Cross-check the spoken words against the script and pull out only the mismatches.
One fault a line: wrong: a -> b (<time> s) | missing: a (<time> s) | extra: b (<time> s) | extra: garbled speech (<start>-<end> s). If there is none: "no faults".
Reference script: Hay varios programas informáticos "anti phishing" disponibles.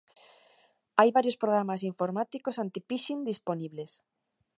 no faults